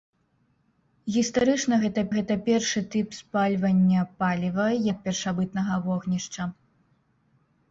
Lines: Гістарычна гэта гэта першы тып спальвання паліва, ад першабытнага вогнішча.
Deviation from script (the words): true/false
false